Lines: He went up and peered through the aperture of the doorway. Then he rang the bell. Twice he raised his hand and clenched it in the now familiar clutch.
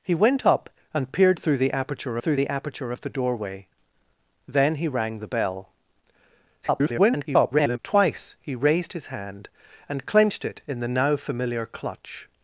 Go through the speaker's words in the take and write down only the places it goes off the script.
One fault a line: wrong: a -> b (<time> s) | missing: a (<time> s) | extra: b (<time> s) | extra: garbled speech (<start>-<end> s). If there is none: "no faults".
extra: through the aperture (2.2 s)
extra: garbled speech (6.6-7.8 s)